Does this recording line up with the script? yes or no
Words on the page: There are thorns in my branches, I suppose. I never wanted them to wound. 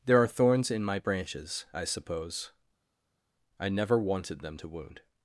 yes